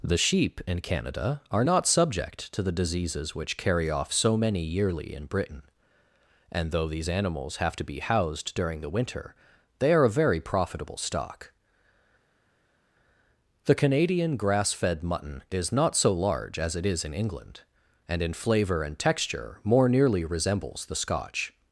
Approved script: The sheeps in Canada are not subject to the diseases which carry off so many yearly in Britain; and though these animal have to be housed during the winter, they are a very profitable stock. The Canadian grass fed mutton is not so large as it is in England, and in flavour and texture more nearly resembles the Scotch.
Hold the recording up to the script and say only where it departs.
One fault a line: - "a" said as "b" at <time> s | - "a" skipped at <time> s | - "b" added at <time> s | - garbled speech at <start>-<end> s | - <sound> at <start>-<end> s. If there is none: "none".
- "sheeps" said as "sheep" at 0.2 s
- "animal" said as "animals" at 7.1 s